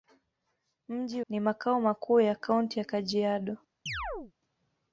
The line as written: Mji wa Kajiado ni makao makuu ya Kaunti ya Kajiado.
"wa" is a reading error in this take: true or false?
true